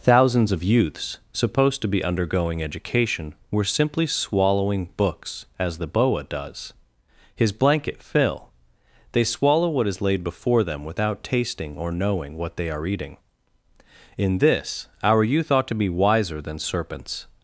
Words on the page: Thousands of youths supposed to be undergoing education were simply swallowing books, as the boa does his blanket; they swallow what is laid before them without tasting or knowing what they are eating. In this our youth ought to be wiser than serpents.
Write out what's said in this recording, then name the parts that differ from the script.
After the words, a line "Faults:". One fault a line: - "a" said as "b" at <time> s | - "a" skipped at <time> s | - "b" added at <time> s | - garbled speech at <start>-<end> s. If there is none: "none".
Thousands of youths supposed to be undergoing education were simply swallowing books, as the boa does his blanket; fill they swallow what is laid before them without tasting or knowing what they are eating. In this our youth ought to be wiser than serpents.
Faults:
- "fill" added at 8.0 s